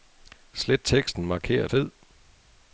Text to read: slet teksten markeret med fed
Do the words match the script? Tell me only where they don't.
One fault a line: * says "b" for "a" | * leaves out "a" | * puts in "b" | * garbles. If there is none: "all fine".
* leaves out "med"